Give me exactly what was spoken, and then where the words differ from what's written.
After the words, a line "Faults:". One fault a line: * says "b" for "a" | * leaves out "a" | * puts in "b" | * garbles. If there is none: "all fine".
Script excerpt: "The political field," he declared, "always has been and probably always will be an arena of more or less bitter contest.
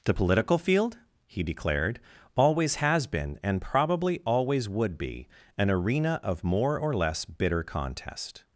"The political field," he declared, "always has been and probably always would be an arena of more or less bitter contest.
Faults:
* says "would" for "will"